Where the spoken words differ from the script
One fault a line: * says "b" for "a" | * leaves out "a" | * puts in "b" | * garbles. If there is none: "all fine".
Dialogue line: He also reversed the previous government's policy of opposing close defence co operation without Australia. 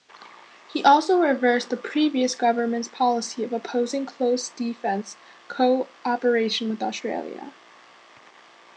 * says "with" for "without"